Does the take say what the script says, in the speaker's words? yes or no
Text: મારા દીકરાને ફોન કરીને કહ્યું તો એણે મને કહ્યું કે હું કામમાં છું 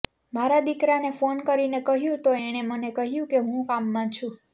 yes